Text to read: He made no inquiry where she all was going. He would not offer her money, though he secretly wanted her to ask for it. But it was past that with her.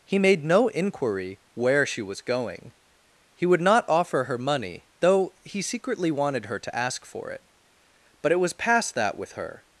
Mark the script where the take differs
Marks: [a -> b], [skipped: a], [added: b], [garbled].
He made no inquiry where she [skipped: all] was going. He would not offer her money, though he secretly wanted her to ask for it. But it was past that with her.